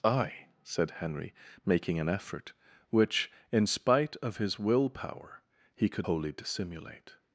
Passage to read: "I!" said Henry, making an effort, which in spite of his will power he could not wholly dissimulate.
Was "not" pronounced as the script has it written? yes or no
no